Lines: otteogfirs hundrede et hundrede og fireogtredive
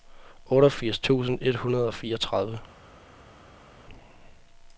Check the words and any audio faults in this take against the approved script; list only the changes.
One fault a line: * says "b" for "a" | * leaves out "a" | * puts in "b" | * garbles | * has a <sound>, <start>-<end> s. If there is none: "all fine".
* says "tusind" for "hundrede"